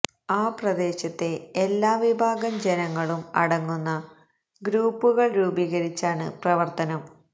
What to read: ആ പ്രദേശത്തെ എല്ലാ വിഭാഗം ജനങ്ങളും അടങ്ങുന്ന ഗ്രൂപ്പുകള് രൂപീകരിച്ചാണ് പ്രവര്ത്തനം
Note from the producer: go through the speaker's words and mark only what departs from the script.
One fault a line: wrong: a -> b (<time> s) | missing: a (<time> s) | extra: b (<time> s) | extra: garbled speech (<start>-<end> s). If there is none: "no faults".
no faults